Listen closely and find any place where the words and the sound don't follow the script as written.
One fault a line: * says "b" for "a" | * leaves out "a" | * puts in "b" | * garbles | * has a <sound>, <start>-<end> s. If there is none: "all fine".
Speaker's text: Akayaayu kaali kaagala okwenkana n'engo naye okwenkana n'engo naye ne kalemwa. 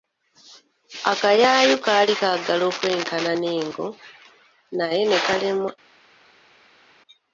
* leaves out "okwenkana n'engo naye"